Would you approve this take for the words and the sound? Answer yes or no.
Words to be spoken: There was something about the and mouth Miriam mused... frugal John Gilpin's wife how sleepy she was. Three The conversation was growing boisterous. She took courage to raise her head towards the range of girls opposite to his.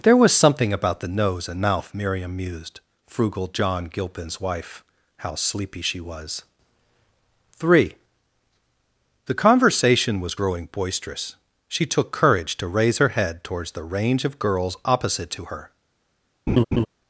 no